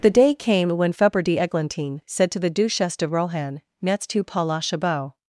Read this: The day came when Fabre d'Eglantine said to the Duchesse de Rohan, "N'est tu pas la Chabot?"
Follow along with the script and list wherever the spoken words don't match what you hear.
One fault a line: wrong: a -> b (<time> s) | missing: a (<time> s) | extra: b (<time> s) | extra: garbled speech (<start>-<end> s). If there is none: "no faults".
no faults